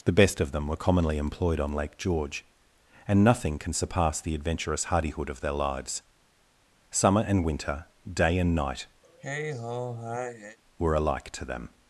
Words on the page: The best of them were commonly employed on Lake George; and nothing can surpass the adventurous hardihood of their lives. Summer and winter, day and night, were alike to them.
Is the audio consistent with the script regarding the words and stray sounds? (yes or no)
no